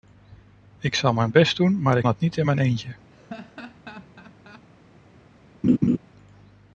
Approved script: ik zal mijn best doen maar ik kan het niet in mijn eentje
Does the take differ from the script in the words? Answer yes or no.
yes